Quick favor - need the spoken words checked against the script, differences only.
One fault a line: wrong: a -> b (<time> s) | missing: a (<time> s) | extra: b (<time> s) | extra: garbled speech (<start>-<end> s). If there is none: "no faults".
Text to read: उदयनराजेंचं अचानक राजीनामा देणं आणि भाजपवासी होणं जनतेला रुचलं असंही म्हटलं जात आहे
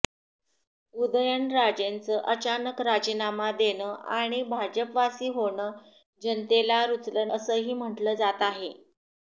no faults